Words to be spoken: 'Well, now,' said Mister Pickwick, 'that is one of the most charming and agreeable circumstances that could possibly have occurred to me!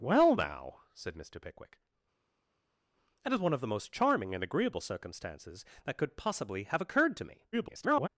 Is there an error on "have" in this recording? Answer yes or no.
no